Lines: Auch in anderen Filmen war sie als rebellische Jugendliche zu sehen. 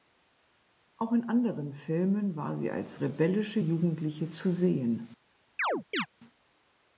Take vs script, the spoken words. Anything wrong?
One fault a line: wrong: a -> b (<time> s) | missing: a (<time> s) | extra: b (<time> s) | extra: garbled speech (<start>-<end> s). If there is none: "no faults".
no faults